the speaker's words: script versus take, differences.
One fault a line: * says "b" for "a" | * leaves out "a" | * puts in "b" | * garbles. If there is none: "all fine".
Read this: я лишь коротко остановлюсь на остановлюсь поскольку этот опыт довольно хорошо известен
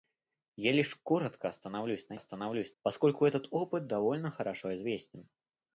all fine